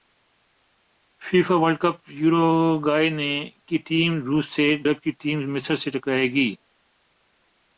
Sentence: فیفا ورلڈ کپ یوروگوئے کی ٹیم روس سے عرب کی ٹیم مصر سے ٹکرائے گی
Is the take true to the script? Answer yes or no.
yes